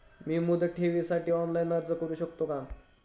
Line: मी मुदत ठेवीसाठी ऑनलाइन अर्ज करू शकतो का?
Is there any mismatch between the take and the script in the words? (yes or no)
no